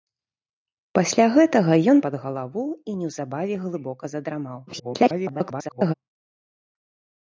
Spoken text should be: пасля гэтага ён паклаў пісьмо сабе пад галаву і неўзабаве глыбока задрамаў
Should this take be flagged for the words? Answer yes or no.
yes